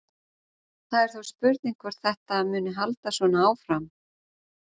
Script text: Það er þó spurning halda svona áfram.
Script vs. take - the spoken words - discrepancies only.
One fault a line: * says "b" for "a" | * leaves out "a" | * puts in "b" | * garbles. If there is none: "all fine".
* puts in "hvort þetta muni"